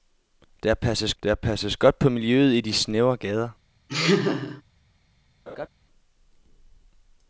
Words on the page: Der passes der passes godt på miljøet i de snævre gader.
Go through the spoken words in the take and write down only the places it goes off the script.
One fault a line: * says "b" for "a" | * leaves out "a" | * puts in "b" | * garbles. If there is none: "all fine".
all fine